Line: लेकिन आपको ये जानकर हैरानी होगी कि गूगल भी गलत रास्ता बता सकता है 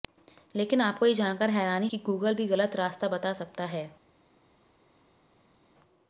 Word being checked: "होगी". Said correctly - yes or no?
no